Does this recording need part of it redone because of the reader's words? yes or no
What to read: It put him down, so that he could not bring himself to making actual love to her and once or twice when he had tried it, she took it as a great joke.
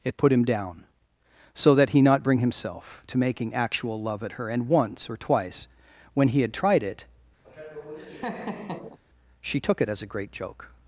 yes